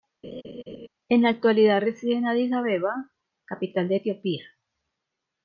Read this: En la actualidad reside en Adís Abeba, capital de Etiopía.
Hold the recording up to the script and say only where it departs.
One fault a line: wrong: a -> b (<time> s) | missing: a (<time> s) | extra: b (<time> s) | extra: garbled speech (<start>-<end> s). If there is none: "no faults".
no faults